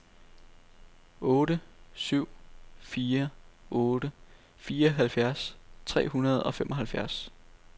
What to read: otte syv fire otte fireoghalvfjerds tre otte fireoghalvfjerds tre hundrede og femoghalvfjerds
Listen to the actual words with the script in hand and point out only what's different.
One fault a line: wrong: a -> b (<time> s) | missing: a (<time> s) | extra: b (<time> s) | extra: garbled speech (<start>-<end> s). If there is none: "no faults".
missing: otte fireoghalvfjerds tre (6.1 s)